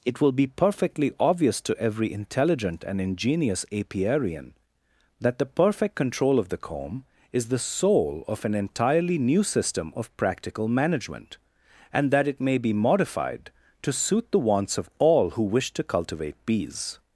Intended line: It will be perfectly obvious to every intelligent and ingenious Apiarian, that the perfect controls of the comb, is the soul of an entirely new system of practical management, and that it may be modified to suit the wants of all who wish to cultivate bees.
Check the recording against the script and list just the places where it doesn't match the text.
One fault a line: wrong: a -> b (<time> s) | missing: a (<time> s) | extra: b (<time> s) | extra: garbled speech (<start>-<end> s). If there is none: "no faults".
wrong: controls -> control (5.9 s)